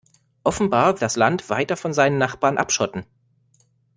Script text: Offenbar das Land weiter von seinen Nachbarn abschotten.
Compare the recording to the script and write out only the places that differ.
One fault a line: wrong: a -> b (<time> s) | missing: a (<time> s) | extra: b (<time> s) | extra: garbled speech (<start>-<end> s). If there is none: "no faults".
no faults